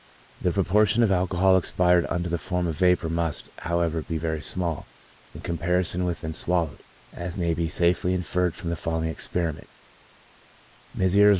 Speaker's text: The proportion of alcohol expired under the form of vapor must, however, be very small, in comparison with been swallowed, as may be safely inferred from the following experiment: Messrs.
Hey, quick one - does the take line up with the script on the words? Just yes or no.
yes